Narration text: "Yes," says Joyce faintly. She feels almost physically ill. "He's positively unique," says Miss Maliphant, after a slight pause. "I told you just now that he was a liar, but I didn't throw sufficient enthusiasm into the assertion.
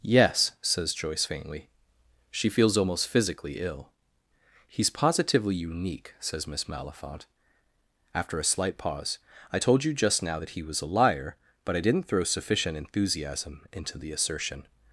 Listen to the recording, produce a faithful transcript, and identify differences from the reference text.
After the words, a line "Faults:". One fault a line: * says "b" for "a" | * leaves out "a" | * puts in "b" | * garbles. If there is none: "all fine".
"Yes," says Joyce faintly. She feels almost physically ill. "He's positively unique," says Miss Maliphant, after a slight pause. "I told you just now that he was a liar, but I didn't throw sufficient enthusiasm into the assertion.
Faults:
all fine